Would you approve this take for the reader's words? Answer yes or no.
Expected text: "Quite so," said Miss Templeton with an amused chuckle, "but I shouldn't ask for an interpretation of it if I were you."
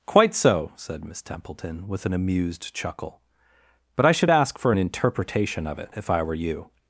no